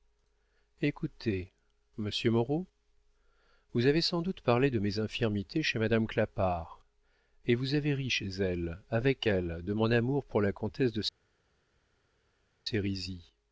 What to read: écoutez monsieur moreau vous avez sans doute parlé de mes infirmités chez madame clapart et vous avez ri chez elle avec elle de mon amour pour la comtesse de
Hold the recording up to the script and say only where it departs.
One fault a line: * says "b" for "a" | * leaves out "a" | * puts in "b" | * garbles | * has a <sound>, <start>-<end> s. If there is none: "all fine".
all fine